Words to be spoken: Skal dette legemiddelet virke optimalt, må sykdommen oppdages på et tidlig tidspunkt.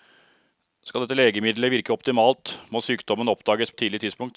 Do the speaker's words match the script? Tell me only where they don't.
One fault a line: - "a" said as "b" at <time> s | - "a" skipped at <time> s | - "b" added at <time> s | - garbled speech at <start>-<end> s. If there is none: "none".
- "på" skipped at 3.7 s